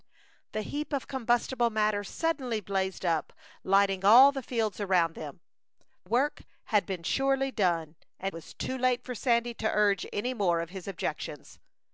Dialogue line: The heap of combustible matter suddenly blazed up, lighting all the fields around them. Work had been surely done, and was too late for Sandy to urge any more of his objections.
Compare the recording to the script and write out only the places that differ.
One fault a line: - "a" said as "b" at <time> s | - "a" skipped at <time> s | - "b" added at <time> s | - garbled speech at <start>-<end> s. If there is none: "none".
none